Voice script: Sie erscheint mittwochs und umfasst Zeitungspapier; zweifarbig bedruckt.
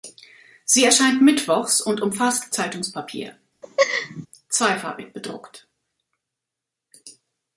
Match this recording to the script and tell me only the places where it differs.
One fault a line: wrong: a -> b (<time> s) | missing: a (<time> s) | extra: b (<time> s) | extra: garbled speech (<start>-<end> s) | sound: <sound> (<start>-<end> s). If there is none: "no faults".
sound: laugh (3.6-4.3 s)